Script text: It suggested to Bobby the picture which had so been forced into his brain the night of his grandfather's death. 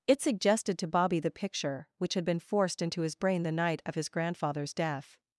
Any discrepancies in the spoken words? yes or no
yes